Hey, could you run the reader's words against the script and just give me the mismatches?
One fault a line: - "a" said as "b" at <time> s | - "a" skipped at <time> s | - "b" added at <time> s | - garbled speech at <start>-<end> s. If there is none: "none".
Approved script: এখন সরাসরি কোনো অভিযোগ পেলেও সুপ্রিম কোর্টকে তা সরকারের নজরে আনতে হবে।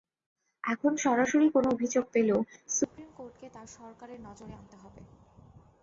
none